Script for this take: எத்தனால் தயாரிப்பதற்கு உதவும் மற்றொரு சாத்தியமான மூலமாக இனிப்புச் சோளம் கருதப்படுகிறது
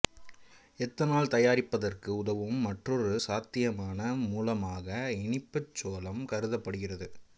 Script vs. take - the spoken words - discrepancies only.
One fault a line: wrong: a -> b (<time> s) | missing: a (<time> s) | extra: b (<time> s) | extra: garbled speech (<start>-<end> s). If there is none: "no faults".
no faults